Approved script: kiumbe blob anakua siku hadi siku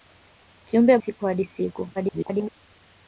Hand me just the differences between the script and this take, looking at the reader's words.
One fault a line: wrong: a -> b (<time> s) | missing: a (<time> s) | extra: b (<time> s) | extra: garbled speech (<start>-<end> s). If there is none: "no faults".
missing: blob anakua (1.0 s)
extra: garbled speech (1.9-2.5 s)